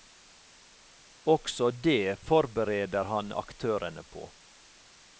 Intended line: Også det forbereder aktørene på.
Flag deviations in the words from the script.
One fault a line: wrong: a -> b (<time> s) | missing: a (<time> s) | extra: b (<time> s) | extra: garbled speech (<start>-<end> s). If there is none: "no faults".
extra: han (3.0 s)